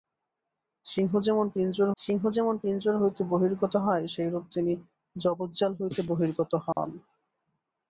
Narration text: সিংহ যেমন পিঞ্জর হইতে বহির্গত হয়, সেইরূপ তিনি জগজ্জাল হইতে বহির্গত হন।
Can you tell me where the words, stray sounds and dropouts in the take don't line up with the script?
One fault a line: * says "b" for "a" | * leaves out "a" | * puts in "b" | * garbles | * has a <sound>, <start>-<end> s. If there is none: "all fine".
* puts in "সিংহ যেমন পিঞ্জর"
* has a dropout, 6.7-6.8 s